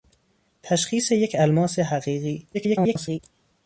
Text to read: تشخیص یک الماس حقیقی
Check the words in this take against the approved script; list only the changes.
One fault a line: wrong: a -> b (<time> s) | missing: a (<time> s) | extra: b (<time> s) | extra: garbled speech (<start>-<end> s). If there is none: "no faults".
extra: garbled speech (2.5-3.2 s)